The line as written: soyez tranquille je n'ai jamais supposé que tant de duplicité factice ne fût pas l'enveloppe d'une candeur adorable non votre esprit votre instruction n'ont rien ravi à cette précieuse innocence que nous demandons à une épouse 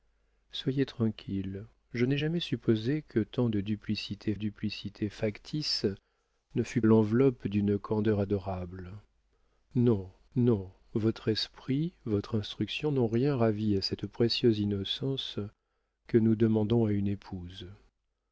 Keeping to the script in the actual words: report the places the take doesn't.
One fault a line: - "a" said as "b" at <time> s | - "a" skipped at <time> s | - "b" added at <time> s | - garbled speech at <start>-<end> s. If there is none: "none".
- "duplicité" added at 4.3 s
- "pas" skipped at 6.8 s
- "non" added at 10.3 s